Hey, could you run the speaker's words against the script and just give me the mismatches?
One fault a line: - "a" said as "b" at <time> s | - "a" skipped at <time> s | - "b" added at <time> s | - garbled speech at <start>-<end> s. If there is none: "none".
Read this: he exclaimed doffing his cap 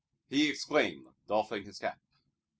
none